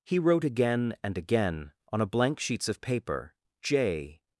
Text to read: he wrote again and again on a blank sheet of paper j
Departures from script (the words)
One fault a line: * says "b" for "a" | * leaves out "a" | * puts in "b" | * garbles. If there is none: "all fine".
* says "sheets" for "sheet"